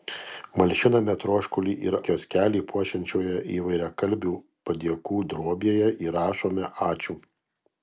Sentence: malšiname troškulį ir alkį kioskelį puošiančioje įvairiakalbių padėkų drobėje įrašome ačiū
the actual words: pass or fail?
fail